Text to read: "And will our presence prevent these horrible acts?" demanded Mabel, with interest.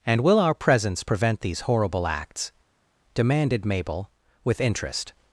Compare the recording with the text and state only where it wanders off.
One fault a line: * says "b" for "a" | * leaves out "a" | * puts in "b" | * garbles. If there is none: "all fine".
all fine